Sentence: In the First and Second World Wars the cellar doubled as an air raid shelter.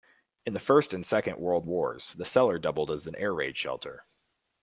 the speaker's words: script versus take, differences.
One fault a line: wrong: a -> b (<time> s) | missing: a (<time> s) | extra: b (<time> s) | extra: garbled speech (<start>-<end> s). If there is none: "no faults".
no faults